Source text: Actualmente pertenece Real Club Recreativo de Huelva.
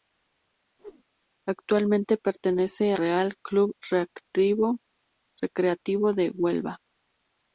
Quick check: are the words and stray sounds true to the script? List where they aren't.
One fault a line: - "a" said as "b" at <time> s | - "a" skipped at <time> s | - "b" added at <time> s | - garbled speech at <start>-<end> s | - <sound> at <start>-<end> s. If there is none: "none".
- whoosh at 0.8-1.0 s